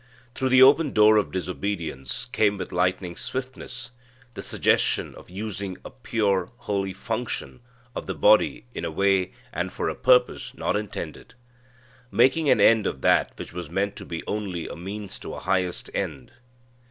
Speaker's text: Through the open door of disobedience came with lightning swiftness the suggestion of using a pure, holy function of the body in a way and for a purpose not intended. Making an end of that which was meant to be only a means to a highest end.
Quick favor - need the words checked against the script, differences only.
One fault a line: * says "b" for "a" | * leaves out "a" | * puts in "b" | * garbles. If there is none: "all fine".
all fine